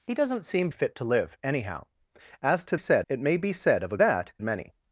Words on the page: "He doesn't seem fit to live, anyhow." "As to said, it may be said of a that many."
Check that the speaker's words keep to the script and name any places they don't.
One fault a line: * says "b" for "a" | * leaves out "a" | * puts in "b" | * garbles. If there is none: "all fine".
all fine